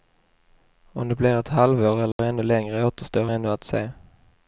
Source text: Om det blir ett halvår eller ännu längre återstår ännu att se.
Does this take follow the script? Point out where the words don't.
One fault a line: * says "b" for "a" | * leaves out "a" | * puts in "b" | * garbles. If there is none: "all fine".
all fine